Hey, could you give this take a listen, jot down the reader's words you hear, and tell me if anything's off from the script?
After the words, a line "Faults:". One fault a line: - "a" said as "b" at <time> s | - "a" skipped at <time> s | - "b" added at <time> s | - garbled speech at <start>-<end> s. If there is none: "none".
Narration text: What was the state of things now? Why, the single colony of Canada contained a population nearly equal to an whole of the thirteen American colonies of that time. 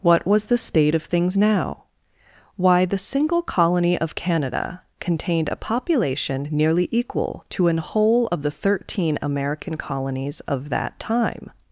What was the state of things now? Why, the single colony of Canada contained a population nearly equal to an whole of the thirteen American colonies of that time.
Faults:
none